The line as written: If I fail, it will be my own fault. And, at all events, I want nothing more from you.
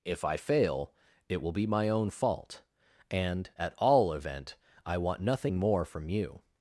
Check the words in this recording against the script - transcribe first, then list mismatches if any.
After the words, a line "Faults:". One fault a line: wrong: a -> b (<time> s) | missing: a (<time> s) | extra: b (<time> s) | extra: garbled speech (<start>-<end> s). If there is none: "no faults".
If I fail, it will be my own fault. And, at all event, I want nothing more from you.
Faults:
wrong: events -> event (4.1 s)